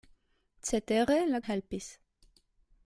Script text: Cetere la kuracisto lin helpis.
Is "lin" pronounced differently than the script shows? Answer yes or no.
yes